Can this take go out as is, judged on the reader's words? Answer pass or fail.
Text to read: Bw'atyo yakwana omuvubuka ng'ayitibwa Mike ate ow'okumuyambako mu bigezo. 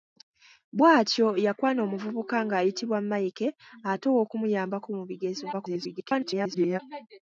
fail